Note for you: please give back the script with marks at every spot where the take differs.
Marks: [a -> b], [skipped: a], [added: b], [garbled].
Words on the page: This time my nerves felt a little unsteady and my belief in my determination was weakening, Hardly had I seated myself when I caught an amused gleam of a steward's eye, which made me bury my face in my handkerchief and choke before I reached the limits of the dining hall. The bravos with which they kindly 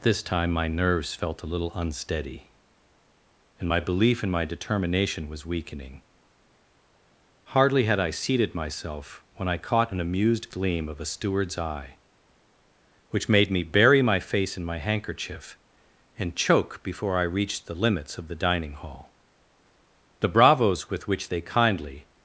This time my nerves felt a little unsteady and my belief in my determination was weakening, Hardly had I seated myself when I caught an amused gleam of a steward's eye, which made me bury my face in my handkerchief and choke before I reached the limits of the dining hall. The bravos with which they kindly